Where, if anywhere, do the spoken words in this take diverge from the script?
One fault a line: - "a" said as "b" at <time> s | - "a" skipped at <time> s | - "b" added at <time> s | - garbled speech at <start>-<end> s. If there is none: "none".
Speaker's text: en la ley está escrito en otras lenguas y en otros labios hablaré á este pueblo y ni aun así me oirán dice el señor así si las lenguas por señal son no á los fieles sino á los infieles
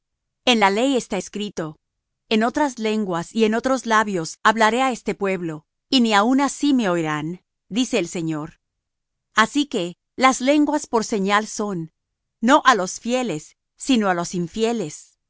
- "si" said as "que" at 9.7 s